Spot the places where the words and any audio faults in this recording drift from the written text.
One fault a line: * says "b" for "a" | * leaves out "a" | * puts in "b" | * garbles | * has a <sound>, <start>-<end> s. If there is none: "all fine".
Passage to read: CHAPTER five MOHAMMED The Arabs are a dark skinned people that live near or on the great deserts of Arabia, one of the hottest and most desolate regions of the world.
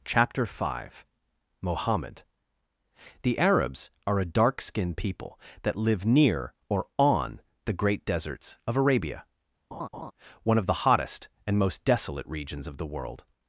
* has a laugh, 9.7-10.1 s